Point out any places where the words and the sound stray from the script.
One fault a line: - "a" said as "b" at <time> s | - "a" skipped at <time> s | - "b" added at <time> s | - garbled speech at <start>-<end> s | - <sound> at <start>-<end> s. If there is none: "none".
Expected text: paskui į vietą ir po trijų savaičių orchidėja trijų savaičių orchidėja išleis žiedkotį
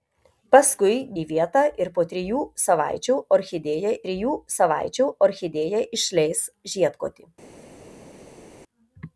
none